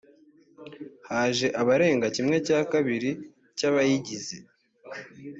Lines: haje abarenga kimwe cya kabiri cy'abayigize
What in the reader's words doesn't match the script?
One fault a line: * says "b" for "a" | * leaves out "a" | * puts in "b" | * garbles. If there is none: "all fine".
all fine